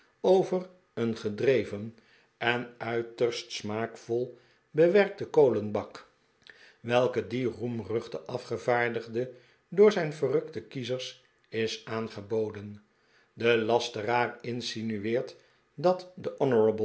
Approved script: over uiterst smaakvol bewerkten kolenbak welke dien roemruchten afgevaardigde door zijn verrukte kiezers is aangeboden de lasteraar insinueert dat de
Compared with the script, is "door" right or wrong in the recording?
right